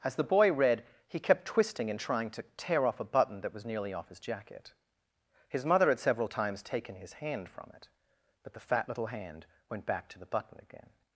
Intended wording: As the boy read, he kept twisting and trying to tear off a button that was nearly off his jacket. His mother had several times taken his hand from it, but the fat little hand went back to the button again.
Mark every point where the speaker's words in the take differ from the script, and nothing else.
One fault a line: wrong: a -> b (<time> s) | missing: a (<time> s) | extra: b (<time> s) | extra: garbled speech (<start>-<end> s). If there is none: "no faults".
no faults